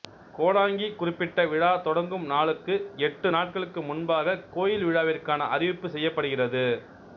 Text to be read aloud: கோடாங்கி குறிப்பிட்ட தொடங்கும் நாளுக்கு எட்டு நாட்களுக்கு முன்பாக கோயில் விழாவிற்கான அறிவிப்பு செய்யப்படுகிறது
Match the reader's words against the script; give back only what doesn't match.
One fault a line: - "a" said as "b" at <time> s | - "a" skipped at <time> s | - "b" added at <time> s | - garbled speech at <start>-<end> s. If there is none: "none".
- "விழா" added at 1.4 s